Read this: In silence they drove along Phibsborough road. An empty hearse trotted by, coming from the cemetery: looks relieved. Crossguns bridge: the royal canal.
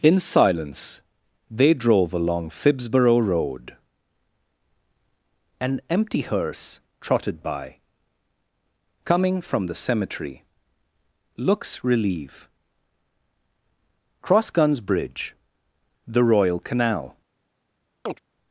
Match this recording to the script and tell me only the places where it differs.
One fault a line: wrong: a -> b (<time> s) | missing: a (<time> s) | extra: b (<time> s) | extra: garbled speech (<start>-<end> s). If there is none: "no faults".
wrong: relieved -> relieve (11.8 s)